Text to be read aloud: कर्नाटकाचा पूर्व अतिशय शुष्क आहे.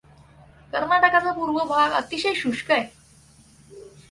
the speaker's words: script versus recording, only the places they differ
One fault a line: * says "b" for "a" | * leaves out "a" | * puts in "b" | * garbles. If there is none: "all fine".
* puts in "भाग"